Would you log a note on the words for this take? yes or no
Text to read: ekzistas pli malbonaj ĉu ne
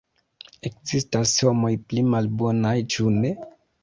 yes